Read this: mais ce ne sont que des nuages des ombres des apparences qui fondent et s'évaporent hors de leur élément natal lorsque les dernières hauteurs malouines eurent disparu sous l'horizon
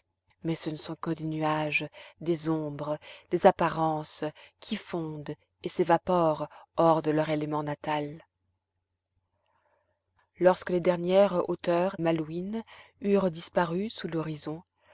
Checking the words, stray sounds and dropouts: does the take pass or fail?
pass